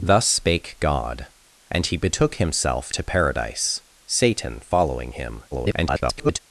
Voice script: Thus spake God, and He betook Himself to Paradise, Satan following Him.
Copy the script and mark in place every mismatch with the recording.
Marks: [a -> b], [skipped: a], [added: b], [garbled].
Thus spake God, and He betook Himself to Paradise, Satan following Him. [garbled]